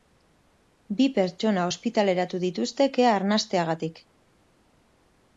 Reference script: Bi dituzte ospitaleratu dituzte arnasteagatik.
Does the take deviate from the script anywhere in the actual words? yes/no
yes